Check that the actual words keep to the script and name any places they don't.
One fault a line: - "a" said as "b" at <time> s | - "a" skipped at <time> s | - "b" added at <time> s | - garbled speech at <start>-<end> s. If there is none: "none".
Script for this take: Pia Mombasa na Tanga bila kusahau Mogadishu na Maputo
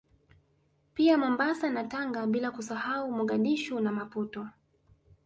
none